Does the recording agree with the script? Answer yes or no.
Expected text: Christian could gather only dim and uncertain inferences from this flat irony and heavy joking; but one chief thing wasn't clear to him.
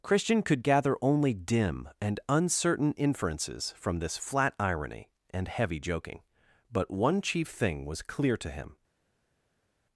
no